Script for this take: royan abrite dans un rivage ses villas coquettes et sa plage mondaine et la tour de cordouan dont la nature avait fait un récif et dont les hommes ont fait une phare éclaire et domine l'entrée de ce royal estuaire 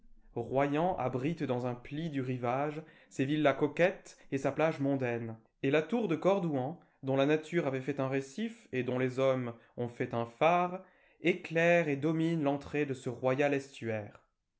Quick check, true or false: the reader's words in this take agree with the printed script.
false